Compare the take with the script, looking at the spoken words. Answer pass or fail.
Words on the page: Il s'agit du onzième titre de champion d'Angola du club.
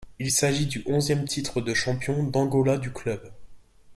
pass